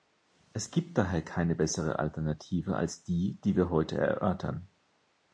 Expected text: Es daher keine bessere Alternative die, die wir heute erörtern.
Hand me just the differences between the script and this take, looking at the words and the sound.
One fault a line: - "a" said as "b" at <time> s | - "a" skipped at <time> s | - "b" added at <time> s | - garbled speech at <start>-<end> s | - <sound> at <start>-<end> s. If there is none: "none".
- "gibt" added at 0.7 s
- "als" added at 2.8 s